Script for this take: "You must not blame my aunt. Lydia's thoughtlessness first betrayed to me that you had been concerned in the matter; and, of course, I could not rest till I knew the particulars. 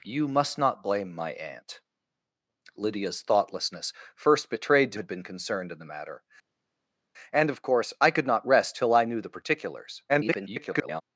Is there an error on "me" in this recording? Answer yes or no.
yes